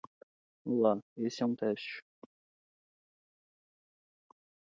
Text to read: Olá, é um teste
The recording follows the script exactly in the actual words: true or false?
false